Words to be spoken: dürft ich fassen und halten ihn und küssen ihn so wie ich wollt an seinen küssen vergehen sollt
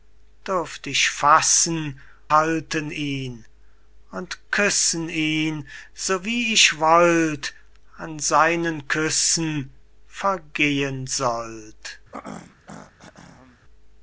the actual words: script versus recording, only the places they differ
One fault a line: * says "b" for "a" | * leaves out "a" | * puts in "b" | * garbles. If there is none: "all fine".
* leaves out "und"